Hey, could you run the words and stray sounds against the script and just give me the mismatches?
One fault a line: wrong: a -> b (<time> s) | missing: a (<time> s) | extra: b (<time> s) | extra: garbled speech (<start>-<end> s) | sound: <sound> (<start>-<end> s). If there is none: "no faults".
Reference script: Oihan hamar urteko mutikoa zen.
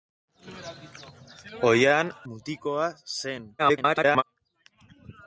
missing: hamar urteko (2.1 s)
extra: garbled speech (3.6-4.2 s)